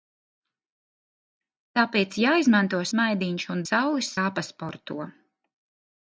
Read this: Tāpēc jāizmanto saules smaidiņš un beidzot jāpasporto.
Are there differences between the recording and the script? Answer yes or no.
yes